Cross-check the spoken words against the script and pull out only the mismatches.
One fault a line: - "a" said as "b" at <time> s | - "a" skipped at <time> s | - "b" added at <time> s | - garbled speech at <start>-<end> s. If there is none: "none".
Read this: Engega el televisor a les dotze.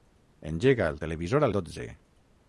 - "les" skipped at 1.5 s